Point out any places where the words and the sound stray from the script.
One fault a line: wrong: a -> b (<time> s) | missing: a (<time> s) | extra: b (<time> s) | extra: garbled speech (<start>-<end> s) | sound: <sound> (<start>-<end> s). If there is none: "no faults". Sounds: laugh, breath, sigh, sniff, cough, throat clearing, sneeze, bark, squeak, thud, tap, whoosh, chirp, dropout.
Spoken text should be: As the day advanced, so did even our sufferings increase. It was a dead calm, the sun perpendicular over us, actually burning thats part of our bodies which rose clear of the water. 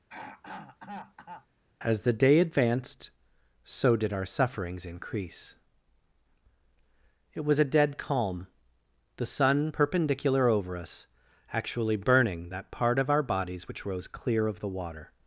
sound: throat clearing (0.1-1.5 s)
missing: even (4.1 s)
wrong: thats -> that (12.5 s)